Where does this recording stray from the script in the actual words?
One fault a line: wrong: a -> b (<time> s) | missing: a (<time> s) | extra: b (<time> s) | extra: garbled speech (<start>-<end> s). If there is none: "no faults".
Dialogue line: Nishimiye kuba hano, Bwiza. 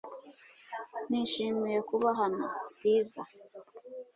no faults